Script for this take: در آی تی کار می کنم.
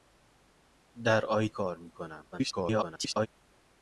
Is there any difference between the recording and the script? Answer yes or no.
yes